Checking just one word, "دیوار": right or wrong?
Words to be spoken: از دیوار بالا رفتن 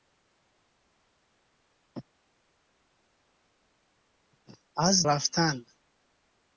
wrong